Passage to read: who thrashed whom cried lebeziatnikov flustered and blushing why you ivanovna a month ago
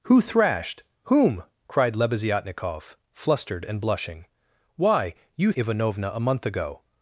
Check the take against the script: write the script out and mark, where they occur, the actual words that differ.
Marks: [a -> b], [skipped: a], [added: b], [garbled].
who thrashed whom cried lebeziatnikov flustered and blushing why you ivanovna a month ago